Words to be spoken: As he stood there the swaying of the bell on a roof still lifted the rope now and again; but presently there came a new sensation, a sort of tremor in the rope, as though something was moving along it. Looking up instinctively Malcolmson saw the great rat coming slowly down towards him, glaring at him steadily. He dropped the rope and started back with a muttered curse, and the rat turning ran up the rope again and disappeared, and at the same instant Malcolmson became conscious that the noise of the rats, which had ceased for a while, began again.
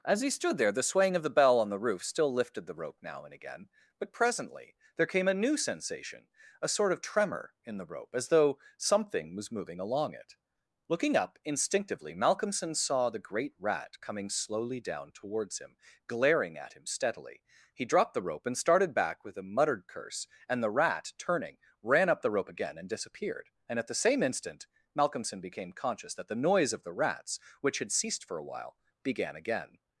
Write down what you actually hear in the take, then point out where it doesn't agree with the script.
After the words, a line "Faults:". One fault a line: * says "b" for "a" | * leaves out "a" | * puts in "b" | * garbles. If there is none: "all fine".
As he stood there the swaying of the bell on the roof still lifted the rope now and again; but presently there came a new sensation, a sort of tremor in the rope, as though something was moving along it. Looking up instinctively Malcolmson saw the great rat coming slowly down towards him, glaring at him steadily. He dropped the rope and started back with a muttered curse, and the rat turning ran up the rope again and disappeared, and at the same instant Malcolmson became conscious that the noise of the rats, which had ceased for a while, began again.
Faults:
* says "the" for "a"